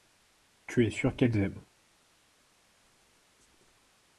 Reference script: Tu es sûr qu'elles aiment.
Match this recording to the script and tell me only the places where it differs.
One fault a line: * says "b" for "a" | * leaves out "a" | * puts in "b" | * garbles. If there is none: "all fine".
all fine